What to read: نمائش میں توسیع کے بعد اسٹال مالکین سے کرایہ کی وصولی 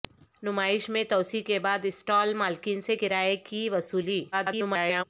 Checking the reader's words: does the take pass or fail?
fail